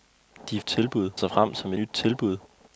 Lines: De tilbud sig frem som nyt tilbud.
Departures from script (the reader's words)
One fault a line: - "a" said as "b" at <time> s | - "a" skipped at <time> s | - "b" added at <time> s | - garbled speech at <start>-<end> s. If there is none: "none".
none